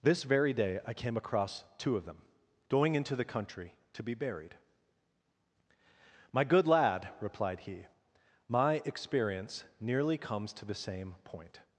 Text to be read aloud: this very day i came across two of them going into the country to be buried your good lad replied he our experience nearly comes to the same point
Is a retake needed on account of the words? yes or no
yes